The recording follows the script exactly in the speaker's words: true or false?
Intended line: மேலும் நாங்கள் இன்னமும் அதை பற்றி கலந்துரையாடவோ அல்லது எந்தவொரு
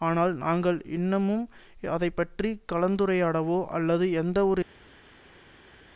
false